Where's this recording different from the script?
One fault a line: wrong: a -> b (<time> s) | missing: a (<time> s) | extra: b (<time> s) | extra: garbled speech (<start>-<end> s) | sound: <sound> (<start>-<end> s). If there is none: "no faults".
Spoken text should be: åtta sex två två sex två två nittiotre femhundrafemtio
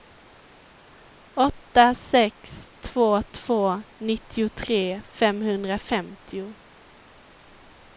missing: sex två två (3.8 s)